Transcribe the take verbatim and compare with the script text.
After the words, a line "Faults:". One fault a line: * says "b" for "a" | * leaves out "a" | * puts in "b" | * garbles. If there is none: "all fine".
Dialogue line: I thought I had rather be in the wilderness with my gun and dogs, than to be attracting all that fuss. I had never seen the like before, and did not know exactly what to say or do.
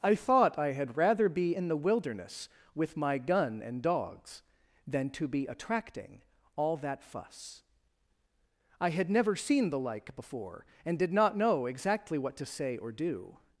I thought I had rather be in the wilderness with my gun and dogs, than to be attracting all that fuss. I had never seen the like before, and did not know exactly what to say or do.
Faults:
all fine